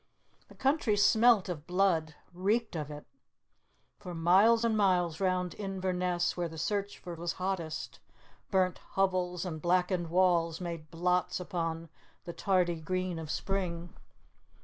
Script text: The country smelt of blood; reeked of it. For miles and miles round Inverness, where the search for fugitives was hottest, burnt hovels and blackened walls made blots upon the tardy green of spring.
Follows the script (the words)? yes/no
no